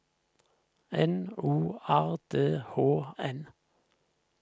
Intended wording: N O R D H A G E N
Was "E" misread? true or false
true